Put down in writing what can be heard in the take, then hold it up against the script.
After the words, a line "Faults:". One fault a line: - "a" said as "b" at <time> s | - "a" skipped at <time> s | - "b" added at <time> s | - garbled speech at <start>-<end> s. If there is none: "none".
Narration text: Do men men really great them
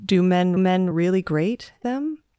Do men men really great them
Faults:
none